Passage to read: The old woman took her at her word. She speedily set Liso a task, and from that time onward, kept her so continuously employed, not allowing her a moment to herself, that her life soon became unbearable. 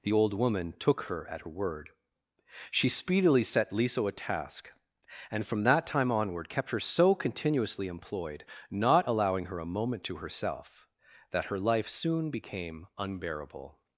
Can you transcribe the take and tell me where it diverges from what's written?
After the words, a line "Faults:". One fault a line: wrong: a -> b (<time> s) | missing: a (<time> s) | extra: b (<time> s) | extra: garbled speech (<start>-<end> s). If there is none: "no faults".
The old woman took her at her word. She speedily set Liso a task, and from that time onward, kept her so continuously employed, not allowing her a moment to herself, that her life soon became unbearable.
Faults:
no faults